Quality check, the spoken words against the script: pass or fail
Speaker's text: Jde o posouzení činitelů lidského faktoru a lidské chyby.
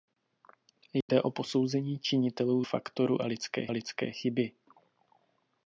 fail